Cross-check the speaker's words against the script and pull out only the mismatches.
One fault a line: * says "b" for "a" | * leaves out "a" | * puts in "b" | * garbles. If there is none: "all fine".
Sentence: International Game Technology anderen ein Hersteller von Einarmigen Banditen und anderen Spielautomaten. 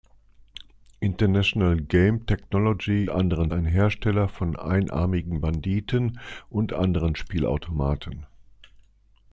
all fine